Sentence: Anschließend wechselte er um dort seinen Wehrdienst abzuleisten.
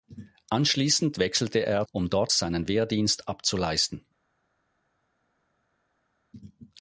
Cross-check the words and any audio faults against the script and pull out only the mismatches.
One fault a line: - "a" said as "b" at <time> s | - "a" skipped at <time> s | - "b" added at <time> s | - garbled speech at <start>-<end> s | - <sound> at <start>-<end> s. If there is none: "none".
none